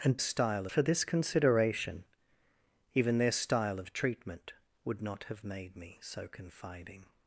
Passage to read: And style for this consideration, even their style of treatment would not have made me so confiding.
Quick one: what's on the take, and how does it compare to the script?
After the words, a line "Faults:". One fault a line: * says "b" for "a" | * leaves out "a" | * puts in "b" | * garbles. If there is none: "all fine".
And style for this consideration, even their style of treatment would not have made me so confiding.
Faults:
all fine